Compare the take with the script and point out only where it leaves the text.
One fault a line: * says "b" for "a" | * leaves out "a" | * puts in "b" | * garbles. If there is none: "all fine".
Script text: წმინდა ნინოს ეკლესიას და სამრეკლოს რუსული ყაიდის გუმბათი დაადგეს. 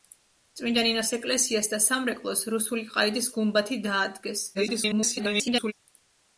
* garbles